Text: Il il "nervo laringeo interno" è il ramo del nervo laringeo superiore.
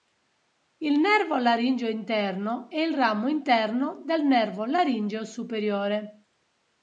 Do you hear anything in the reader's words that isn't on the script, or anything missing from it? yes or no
yes